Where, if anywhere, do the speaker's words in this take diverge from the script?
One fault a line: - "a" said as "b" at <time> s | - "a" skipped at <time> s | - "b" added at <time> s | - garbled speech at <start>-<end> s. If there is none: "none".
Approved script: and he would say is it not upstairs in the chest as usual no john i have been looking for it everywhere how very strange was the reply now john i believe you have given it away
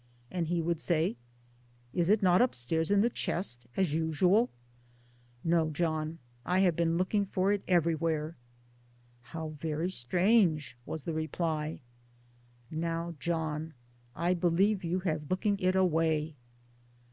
- "given" said as "looking" at 15.3 s